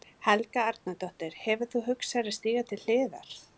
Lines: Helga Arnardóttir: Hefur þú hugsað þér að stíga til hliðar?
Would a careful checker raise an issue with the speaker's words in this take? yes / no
no